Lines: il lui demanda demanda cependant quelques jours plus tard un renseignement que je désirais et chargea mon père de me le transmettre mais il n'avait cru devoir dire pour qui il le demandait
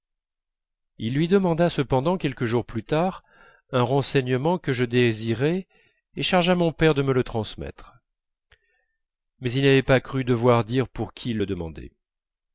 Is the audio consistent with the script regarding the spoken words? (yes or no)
no